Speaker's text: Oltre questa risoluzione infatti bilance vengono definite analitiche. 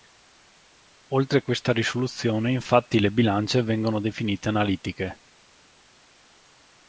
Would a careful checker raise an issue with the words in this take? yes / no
yes